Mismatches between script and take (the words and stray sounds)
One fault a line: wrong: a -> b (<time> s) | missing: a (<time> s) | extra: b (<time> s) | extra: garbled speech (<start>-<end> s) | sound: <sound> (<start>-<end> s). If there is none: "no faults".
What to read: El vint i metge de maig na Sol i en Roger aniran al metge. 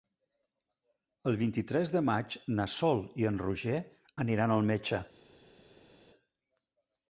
wrong: metge -> tres (1.7 s)